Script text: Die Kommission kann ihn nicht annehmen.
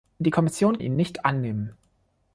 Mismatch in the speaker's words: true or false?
true